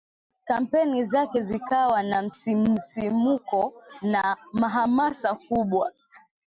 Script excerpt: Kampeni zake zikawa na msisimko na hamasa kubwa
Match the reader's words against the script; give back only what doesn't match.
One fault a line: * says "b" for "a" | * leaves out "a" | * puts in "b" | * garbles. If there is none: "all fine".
all fine